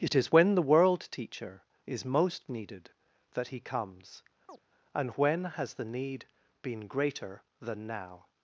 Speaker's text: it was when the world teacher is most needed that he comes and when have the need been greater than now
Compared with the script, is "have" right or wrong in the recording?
wrong